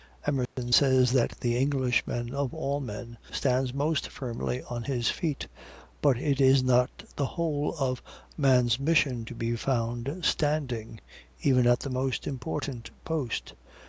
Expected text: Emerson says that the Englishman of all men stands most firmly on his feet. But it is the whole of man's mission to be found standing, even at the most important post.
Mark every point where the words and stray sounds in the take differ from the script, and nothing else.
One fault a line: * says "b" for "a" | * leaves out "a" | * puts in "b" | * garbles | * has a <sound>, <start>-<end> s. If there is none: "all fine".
* has a dropout, 0.5-0.6 s
* puts in "not"